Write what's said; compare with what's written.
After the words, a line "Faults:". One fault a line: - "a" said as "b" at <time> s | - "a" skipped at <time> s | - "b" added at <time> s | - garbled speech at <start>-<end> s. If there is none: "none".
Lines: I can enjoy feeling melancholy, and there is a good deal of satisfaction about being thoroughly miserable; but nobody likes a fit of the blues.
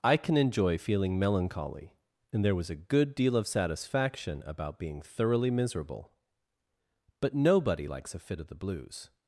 I can enjoy feeling melancholy, and there was a good deal of satisfaction about being thoroughly miserable; but nobody likes a fit of the blues.
Faults:
- "is" said as "was" at 2.5 s